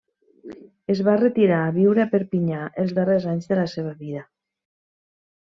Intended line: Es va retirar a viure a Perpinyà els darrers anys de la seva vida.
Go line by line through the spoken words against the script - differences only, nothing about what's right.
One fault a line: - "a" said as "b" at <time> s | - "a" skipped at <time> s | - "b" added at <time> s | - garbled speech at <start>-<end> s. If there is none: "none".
none